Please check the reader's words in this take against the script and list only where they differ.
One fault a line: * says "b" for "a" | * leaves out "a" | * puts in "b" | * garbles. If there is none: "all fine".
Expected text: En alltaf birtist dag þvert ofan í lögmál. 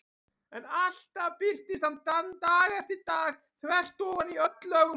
* puts in "hann"
* puts in "eftir dag"
* puts in "öll"